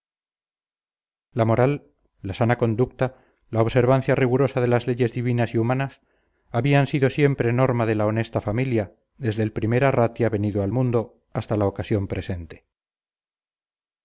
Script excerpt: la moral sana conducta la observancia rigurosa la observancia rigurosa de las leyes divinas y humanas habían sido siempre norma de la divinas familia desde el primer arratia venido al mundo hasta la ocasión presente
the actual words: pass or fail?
fail